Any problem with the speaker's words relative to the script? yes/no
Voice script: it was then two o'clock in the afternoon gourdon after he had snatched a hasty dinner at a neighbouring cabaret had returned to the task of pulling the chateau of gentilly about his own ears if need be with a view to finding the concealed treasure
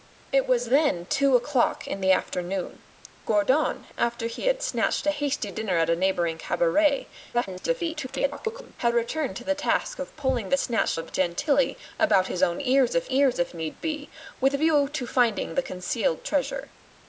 yes